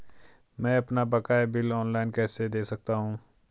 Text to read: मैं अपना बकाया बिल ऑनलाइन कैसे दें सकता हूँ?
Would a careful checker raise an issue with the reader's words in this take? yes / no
no